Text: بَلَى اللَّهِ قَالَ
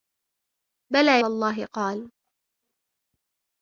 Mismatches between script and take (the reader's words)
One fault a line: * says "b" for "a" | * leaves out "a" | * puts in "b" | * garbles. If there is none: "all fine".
all fine